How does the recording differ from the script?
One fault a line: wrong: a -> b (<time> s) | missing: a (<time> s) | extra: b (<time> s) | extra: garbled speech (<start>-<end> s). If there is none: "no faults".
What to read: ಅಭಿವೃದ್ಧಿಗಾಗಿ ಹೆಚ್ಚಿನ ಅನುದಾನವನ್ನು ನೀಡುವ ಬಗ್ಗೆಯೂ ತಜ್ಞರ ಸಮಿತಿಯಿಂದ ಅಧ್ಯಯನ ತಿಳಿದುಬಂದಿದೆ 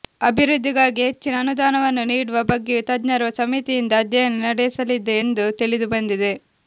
extra: ನಡೆಸಲಿದೆ ಎಂದು (4.5 s)